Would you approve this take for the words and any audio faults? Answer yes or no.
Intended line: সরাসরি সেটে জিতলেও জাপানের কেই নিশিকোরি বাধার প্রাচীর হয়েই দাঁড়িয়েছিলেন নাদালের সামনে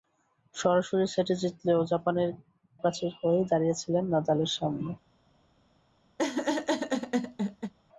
no